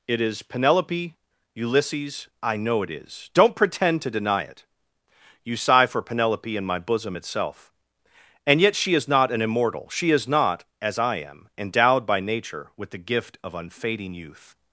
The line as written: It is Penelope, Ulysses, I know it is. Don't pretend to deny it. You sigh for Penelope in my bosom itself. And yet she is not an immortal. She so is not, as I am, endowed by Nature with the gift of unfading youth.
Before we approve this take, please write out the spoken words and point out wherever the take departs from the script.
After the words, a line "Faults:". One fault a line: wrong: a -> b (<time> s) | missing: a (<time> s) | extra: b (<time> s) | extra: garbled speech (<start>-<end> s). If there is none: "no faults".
It is Penelope, Ulysses, I know it is. Don't pretend to deny it. You sigh for Penelope in my bosom itself. And yet she is not an immortal. She is not, as I am, endowed by Nature with the gift of unfading youth.
Faults:
missing: so (10.1 s)